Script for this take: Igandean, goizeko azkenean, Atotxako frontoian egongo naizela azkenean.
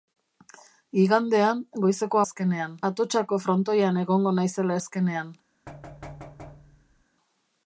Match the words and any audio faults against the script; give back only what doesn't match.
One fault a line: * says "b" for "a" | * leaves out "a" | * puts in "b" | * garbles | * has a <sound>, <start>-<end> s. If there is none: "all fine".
* has a thud, 5.7-7.0 s